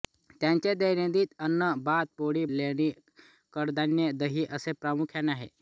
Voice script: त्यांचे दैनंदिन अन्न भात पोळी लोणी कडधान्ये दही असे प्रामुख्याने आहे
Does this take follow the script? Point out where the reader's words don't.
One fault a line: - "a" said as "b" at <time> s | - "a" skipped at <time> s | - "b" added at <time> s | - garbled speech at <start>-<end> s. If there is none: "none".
none